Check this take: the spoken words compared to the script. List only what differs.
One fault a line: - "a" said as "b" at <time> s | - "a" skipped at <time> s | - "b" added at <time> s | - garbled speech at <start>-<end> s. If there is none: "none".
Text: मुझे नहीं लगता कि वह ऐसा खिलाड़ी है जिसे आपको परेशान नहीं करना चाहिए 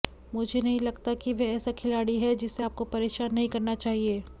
none